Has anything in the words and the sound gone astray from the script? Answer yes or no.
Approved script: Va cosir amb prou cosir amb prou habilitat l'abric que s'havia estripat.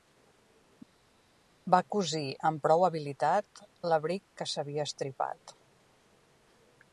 yes